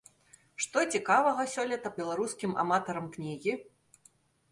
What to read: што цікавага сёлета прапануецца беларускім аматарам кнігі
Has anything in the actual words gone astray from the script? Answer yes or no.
yes